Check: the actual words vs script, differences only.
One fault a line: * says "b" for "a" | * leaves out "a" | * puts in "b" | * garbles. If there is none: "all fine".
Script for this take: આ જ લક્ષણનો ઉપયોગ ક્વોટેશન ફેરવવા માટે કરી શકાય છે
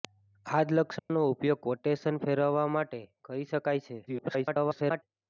* garbles